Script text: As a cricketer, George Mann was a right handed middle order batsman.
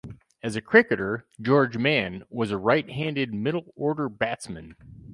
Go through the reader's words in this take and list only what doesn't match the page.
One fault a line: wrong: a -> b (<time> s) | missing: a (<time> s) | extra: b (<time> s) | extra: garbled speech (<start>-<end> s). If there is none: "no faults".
no faults